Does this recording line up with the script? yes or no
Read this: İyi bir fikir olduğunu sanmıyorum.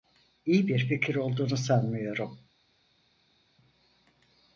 yes